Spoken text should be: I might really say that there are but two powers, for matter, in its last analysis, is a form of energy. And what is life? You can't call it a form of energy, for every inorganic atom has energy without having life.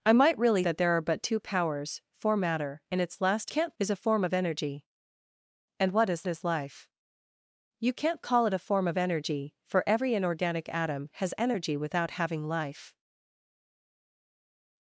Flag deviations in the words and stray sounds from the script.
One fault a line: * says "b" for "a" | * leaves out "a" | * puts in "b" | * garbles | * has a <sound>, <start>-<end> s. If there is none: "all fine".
* leaves out "say"
* says "can't" for "analysis"
* puts in "is"